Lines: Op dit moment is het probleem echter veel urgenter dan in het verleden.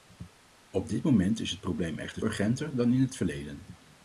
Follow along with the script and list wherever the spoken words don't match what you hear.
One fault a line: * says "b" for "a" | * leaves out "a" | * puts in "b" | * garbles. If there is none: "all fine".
* leaves out "veel"